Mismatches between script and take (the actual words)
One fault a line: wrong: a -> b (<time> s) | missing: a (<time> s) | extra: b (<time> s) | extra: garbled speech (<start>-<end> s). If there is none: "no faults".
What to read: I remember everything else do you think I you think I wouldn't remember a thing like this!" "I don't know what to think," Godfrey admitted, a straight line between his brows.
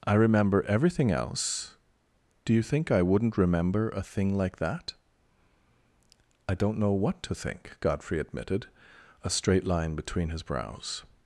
missing: you think I (3.0 s)
wrong: this -> that (4.6 s)